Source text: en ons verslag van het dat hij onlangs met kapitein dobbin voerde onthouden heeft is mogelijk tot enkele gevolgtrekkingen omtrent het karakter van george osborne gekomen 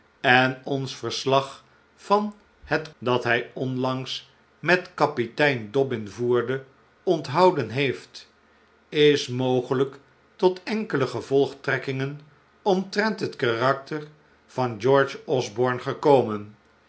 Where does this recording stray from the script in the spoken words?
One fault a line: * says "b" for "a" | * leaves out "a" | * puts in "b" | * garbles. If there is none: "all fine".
all fine